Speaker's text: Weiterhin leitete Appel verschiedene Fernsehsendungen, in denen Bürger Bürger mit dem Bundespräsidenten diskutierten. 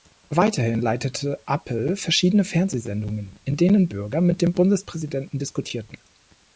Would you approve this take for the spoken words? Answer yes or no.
no